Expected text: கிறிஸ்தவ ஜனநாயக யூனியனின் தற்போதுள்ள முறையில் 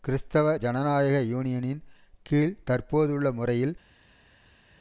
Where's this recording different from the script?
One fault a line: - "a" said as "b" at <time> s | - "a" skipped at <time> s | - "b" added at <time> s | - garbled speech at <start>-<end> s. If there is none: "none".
- "கீழ்" added at 2.3 s